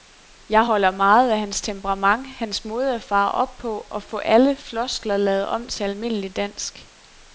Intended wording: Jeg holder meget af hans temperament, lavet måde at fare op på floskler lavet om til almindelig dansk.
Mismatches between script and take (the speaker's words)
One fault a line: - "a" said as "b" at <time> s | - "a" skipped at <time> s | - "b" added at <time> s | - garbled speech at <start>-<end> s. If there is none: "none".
- "lavet" said as "hans" at 2.3 s
- "og få alle" added at 3.9 s